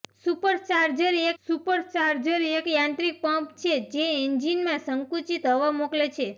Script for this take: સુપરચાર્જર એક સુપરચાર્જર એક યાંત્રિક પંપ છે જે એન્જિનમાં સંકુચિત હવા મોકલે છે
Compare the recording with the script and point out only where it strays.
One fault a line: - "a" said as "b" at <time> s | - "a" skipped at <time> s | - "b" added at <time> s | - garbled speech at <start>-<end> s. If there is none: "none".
none